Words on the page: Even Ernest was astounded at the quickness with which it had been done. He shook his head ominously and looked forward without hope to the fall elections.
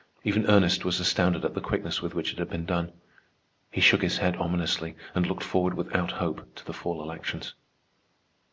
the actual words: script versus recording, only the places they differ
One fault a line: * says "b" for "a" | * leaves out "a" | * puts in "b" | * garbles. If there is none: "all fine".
all fine